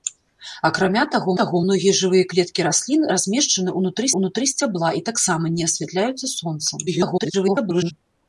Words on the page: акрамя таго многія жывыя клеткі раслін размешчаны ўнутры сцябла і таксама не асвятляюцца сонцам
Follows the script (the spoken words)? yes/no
no